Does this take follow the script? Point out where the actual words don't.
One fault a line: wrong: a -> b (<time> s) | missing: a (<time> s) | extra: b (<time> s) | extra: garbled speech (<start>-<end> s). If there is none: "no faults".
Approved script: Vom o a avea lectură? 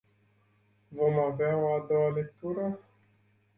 extra: avea (1.2 s)
wrong: avea -> doua (1.9 s)